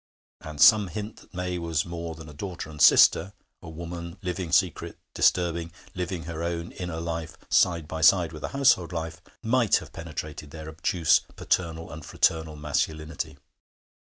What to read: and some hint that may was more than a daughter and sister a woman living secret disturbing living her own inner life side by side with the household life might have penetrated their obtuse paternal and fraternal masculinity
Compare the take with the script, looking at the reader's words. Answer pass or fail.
pass